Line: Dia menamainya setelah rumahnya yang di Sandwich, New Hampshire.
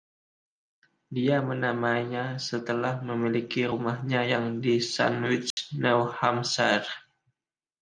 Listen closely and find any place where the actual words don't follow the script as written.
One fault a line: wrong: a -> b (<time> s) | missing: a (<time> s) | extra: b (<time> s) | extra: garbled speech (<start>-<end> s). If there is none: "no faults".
extra: memiliki (3.0 s)